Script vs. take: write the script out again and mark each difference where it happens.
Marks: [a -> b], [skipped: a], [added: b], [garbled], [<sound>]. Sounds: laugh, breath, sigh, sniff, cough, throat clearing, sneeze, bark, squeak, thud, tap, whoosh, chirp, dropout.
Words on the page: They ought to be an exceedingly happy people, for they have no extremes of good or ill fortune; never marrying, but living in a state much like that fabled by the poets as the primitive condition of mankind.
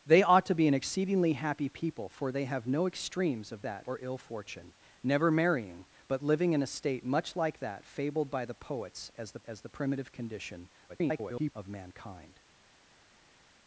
They ought to be an exceedingly happy people, for they have no extremes of [good -> that] or ill fortune; never marrying, but living in a state much like that fabled by the poets as the [added: as the] primitive condition [garbled] of mankind.